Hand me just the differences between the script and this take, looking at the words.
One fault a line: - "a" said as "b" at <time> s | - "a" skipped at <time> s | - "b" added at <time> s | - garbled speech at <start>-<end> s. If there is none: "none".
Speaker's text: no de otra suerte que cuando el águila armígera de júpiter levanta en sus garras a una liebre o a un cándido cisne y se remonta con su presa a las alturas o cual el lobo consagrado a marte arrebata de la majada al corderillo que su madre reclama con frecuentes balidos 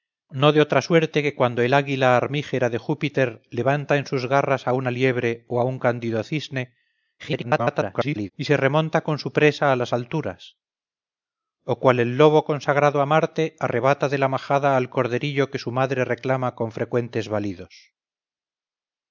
- garbled speech at 7.2-8.3 s